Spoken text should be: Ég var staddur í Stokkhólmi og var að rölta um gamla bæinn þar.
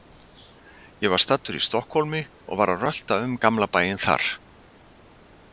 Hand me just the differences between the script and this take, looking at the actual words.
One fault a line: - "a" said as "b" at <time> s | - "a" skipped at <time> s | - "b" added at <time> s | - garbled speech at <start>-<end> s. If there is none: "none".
none